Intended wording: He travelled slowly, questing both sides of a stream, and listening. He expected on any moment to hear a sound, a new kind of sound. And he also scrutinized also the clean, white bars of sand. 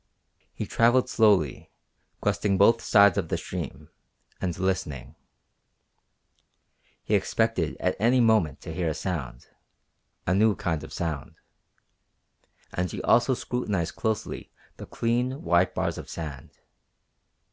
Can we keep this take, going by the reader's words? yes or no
no